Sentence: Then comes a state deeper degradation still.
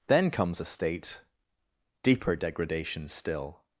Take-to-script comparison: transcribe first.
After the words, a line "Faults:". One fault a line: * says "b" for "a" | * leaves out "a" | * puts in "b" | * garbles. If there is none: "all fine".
Then comes a state deeper degradation still.
Faults:
all fine